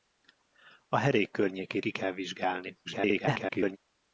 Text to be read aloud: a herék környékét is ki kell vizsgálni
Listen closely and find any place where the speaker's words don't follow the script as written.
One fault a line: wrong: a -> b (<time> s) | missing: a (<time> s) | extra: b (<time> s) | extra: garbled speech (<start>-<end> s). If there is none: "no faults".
missing: is (1.9 s)
extra: garbled speech (2.8-3.8 s)